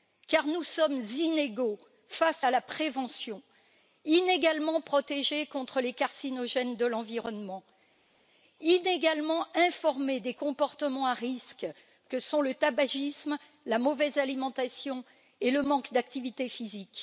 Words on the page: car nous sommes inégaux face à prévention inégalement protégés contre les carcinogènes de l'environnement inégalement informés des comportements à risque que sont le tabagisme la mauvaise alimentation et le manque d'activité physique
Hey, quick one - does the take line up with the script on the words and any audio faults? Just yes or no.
no